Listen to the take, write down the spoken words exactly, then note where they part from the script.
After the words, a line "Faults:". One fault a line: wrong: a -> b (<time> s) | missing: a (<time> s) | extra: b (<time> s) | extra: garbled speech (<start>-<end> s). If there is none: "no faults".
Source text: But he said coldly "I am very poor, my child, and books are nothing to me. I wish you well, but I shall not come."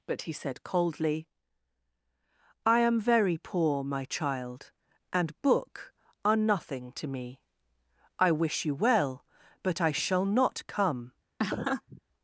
But he said coldly "I am very poor, my child, and book are nothing to me. I wish you well, but I shall not come."
Faults:
wrong: books -> book (5.4 s)